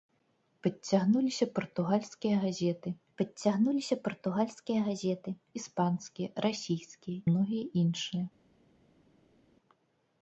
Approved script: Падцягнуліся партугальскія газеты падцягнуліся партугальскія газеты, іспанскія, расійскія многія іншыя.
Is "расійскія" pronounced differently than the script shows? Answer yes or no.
no